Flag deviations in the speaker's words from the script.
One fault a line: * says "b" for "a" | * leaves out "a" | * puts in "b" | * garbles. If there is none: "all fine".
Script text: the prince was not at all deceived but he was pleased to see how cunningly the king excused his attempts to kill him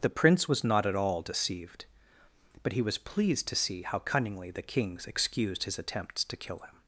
* says "kings" for "king"